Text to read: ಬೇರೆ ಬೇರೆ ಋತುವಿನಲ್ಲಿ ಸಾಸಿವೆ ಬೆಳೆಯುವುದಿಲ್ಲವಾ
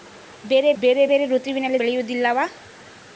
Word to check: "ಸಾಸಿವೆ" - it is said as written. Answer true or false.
false